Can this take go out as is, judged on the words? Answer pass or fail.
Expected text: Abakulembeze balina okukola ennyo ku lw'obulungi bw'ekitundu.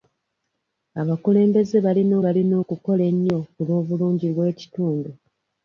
fail